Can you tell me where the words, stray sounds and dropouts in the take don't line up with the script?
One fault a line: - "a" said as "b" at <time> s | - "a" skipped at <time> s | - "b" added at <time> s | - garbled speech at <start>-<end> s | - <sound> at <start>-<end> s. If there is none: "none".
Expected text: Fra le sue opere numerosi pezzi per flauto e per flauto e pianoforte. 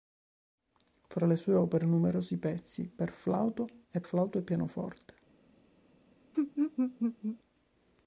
- "per" skipped at 4.0 s
- laugh at 6.3-7.4 s